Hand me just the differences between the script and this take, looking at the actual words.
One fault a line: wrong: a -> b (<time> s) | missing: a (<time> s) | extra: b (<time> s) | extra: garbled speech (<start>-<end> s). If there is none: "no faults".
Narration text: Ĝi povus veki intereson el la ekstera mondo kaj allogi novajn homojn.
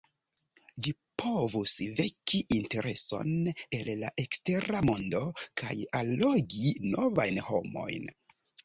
no faults